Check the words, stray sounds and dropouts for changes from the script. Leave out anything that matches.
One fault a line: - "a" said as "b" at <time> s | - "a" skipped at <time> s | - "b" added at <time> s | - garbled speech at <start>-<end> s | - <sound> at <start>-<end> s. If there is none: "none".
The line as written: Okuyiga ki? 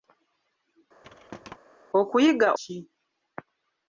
- thud at 1.0-1.6 s